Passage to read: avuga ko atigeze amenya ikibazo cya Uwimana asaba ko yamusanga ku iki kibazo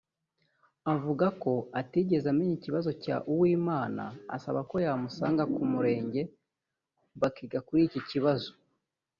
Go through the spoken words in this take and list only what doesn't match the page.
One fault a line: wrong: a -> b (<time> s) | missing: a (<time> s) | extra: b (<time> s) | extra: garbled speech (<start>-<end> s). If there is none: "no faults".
extra: murenge bakiga kuri (5.7 s)